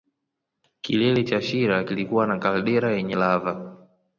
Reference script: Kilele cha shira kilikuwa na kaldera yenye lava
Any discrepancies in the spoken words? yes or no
no